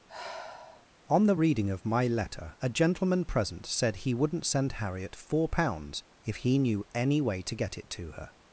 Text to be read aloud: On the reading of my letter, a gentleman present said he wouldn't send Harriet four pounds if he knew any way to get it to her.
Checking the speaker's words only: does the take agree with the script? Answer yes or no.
yes